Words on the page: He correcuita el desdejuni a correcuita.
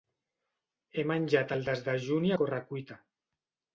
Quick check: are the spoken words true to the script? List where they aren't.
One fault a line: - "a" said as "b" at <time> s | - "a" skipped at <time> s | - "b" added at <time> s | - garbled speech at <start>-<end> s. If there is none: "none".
- "correcuita" said as "menjat" at 1.1 s